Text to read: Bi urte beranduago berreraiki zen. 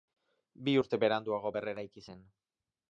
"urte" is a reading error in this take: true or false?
false